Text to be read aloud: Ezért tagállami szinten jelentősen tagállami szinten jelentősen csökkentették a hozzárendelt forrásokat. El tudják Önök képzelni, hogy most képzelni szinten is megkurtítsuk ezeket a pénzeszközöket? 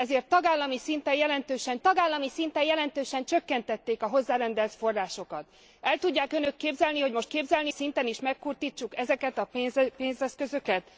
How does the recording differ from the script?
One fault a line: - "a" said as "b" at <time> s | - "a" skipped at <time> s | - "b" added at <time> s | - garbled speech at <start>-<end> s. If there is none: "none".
none